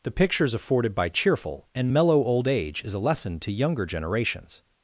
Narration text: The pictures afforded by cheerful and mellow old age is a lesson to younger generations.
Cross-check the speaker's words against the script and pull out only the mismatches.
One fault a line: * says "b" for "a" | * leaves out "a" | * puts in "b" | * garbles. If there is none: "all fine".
all fine